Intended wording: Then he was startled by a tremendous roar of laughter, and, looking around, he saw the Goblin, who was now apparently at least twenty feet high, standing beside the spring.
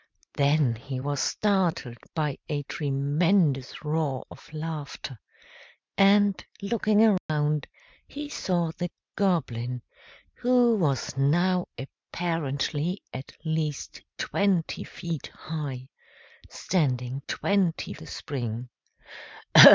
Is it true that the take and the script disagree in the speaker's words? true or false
true